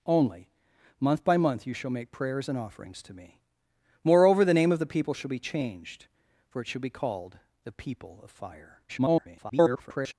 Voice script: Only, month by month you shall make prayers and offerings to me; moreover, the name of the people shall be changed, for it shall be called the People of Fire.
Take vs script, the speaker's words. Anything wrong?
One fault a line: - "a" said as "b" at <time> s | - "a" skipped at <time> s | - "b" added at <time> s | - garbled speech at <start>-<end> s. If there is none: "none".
- garbled speech at 8.9-10.1 s